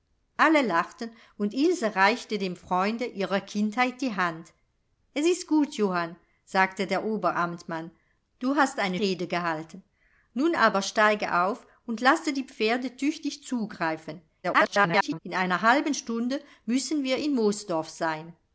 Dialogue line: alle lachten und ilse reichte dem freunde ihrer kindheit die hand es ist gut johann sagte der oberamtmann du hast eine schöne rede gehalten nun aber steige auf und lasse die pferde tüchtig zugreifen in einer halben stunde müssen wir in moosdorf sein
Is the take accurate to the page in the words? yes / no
no